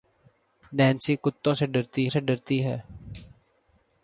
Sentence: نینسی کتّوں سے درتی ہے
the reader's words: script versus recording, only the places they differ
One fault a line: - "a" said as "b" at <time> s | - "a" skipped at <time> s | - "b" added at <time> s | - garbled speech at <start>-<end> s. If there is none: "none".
- "سے درتی" added at 2.1 s